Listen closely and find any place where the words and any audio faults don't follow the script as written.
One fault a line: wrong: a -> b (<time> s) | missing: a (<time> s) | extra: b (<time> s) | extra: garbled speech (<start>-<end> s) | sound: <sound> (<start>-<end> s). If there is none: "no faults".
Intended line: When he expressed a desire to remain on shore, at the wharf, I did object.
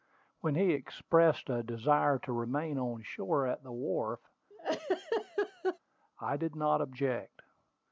sound: laugh (4.5-5.8 s)
extra: not (6.6 s)